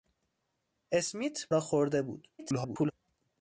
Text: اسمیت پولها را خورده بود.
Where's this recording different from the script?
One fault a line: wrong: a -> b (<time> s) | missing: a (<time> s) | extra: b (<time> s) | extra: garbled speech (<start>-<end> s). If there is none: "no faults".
missing: پولها (1.5 s)
extra: garbled speech (2.4-2.9 s)